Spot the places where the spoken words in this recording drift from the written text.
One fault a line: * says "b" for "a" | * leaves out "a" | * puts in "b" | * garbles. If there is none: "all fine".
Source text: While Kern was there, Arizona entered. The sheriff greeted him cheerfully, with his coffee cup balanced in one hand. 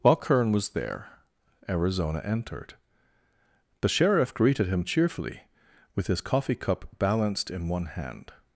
all fine